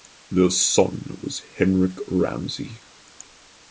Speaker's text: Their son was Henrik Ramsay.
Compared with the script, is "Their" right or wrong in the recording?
right